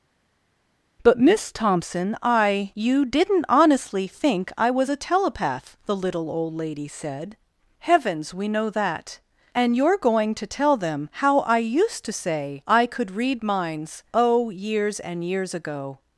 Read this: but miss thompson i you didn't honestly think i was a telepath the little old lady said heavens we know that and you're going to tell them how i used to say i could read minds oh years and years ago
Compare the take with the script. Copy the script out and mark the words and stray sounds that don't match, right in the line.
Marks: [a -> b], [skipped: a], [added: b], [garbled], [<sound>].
but miss thompson i you didn't honestly think i was a telepath the little old lady said heavens we know that and you're going to tell them how i used to say i could read minds oh years and years ago